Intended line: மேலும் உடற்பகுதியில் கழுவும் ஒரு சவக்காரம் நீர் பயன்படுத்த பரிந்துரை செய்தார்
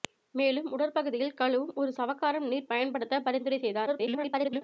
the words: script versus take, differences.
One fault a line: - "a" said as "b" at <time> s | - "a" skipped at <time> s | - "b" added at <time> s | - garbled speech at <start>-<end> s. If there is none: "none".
- garbled speech at 3.9-4.6 s